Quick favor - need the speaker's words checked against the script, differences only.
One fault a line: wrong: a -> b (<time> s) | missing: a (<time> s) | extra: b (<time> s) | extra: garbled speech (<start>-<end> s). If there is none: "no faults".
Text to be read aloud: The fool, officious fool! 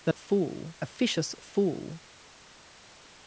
no faults